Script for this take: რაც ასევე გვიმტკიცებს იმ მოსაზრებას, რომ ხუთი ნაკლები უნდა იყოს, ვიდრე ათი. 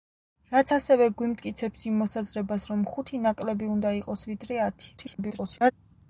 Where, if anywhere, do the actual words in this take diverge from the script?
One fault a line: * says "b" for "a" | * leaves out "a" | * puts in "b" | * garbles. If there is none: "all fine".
* garbles